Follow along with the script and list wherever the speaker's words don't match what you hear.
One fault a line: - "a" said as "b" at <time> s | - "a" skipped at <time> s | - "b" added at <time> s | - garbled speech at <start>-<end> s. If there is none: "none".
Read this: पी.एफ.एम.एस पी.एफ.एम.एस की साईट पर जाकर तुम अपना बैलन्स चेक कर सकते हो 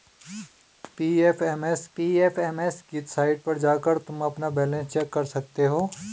none